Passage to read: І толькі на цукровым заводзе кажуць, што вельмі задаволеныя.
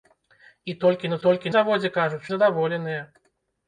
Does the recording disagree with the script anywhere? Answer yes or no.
yes